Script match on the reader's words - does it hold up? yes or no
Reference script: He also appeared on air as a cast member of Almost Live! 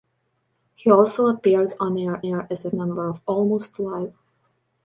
no